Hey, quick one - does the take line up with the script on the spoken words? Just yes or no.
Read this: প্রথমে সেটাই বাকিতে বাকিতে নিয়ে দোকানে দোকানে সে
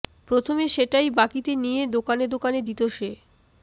no